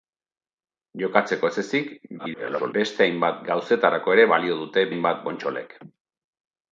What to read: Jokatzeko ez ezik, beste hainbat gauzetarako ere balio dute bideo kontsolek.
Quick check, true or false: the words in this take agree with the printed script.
false